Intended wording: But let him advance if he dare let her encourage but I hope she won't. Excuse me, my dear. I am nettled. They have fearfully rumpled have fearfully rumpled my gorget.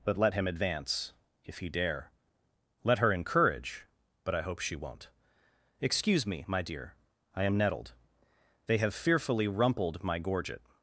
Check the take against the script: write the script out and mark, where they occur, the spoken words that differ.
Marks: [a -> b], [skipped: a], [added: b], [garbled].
But let him advance if he dare let her encourage but I hope she won't. Excuse me, my dear. I am nettled. They have fearfully rumpled [skipped: have fearfully rumpled] my gorget.